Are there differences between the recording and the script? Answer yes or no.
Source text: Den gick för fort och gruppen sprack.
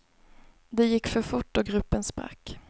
yes